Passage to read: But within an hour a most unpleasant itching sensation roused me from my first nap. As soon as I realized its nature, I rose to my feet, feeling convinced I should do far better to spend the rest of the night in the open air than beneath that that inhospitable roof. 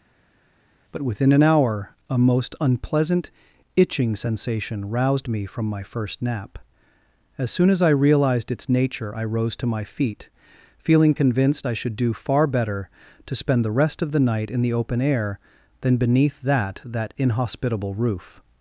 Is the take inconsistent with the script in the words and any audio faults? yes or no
no